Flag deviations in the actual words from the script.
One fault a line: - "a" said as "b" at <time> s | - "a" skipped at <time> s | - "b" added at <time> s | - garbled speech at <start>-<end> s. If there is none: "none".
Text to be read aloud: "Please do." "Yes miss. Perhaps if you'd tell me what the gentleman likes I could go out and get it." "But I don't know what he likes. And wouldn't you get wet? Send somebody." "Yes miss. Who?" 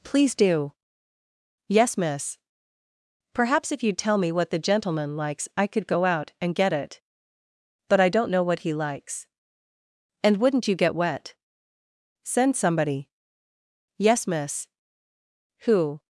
none